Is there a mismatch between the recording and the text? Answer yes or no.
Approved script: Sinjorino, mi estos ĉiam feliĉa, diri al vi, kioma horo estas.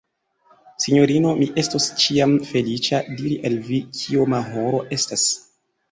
no